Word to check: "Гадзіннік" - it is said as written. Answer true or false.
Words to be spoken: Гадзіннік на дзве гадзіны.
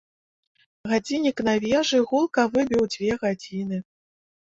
true